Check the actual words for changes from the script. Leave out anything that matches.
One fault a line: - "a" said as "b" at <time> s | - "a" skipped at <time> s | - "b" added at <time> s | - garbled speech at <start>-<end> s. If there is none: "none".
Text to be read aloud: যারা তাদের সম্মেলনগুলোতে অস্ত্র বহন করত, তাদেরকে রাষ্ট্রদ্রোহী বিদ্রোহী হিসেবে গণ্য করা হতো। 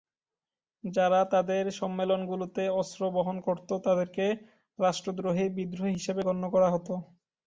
none